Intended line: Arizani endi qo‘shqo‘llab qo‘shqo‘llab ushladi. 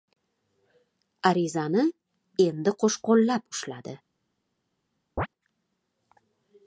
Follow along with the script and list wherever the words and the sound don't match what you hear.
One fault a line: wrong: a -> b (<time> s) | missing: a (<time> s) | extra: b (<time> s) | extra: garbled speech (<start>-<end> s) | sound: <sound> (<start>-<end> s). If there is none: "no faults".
missing: qo‘shqo‘llab (3.5 s)
sound: chirp (5.2-5.3 s)